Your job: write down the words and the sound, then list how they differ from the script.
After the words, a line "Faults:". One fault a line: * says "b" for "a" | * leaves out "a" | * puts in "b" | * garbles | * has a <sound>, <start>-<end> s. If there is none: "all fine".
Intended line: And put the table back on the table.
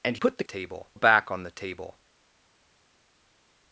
And put the table back on the table.
Faults:
all fine